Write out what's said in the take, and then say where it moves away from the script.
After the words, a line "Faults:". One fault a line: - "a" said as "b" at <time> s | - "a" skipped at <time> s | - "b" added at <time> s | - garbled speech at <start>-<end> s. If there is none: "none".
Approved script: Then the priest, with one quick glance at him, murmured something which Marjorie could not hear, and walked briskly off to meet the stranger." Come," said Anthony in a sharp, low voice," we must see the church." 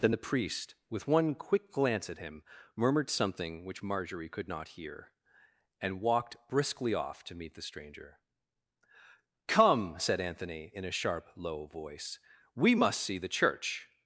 Then the priest, with one quick glance at him, murmured something which Marjorie could not hear, and walked briskly off to meet the stranger." Come," said Anthony in a sharp, low voice," we must see the church."
Faults:
none